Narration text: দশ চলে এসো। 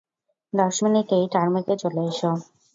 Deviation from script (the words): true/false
true